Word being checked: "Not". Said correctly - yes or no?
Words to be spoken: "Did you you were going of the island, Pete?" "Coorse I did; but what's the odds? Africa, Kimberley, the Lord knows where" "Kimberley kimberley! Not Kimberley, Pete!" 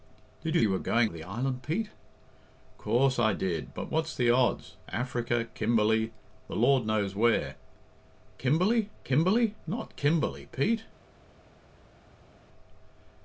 yes